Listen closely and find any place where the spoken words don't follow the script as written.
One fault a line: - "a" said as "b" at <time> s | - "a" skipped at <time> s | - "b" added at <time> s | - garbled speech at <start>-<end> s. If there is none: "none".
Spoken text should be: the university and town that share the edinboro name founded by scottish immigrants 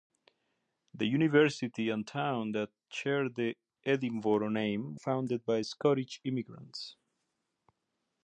none